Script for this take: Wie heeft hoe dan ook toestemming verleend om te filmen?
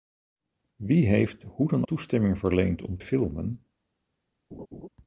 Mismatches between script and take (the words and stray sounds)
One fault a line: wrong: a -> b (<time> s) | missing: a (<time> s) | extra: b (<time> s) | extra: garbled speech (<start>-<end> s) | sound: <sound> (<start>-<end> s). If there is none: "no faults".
missing: ook (1.9 s)
missing: te (3.0 s)
sound: laugh (4.5-4.9 s)